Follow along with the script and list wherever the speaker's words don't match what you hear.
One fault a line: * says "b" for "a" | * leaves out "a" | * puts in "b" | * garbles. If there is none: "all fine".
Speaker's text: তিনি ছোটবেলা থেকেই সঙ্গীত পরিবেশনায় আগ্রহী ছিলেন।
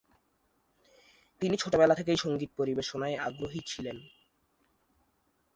all fine